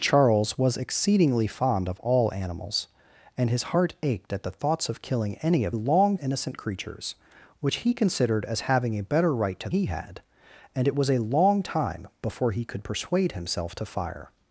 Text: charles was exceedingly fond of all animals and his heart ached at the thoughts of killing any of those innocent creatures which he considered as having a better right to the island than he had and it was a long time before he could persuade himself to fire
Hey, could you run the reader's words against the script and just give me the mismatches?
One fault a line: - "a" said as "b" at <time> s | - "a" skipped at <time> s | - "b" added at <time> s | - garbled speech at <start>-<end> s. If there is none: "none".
- "those" said as "long" at 5.7 s
- "the island than" skipped at 9.7 s